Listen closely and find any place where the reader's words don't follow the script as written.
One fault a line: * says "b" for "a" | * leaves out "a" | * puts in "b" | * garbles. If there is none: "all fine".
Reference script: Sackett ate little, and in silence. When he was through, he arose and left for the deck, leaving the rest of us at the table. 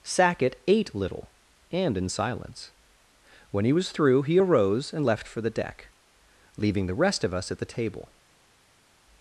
all fine